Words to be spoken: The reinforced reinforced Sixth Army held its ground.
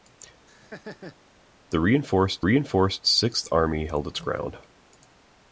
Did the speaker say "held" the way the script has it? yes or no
yes